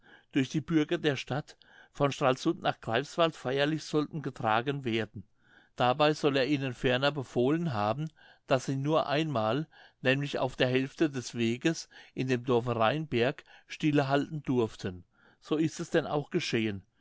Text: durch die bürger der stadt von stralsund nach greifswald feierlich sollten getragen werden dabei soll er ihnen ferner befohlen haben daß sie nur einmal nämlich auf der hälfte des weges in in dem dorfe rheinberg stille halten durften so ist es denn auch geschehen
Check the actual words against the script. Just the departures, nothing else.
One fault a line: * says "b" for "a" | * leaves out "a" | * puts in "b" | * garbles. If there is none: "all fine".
* leaves out "in"